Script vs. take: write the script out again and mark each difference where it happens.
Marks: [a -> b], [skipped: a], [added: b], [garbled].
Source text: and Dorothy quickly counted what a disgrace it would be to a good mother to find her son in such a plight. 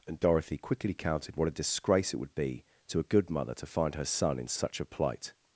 and Dorothy quickly counted what a disgrace it would be to a good mother to find her son in such a plight.